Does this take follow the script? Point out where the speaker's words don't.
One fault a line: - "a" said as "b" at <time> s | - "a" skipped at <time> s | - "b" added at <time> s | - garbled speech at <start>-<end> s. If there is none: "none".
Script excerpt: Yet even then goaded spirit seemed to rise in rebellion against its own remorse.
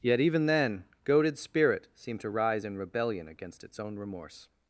none